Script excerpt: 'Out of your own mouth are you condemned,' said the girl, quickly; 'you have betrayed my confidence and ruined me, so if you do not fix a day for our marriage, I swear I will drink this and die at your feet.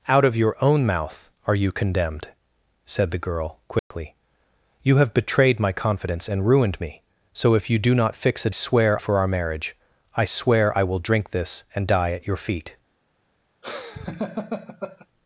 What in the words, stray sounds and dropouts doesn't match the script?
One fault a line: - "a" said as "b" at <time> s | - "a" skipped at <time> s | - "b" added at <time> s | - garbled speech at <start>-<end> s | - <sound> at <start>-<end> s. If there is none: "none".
- dropout at 3.8-3.9 s
- "day" said as "swear" at 8.5 s
- laugh at 13.6-15.1 s